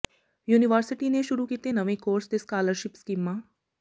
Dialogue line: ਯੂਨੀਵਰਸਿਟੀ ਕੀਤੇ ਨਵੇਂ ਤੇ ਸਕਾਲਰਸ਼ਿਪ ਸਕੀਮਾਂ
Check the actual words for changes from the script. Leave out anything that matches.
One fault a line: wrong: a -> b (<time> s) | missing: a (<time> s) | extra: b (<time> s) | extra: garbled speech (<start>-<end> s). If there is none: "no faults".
extra: ਨੇ ਸ਼ੁਰੂ (1.1 s)
extra: ਕੋਰਸ (2.0 s)